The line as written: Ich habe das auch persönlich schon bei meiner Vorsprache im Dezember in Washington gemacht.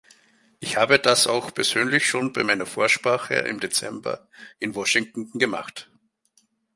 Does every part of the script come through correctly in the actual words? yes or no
yes